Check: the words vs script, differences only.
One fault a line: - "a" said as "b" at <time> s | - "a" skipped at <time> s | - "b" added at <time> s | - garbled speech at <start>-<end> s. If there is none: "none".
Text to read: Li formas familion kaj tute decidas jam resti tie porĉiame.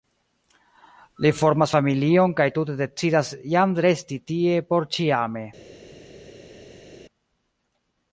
none